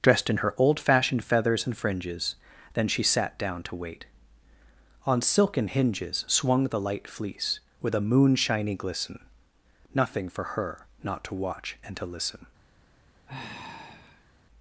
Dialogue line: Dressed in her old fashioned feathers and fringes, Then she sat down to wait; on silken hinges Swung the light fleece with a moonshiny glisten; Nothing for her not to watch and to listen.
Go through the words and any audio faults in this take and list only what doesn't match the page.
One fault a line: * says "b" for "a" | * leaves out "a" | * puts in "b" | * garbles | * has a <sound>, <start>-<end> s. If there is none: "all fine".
* has a sigh, 13.3-14.3 s